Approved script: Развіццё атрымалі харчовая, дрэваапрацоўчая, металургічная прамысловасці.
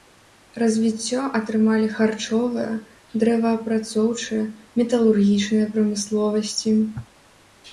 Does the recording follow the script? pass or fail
pass